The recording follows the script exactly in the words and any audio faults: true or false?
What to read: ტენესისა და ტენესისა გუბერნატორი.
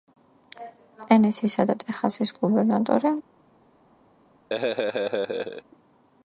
false